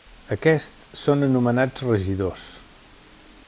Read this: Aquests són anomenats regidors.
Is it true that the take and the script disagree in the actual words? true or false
false